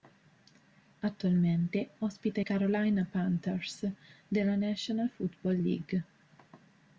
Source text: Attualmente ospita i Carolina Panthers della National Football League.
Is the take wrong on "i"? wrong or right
right